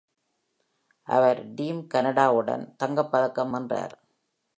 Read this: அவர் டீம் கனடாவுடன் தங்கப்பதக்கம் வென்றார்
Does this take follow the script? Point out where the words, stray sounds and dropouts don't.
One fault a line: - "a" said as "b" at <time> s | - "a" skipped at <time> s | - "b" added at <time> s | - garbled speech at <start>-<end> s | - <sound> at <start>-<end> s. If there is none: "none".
none